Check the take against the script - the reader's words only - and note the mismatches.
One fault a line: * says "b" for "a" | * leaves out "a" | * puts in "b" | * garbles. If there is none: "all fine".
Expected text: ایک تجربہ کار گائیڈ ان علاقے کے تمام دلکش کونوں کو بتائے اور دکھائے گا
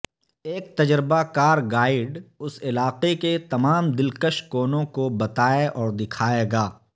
* says "اس" for "ان"